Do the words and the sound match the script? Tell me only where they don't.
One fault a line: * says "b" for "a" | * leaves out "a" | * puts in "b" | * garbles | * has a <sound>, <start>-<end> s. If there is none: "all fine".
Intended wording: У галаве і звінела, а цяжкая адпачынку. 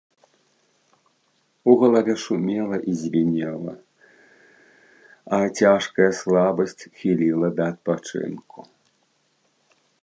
* puts in "шумела"
* puts in "слабасць хіліла да"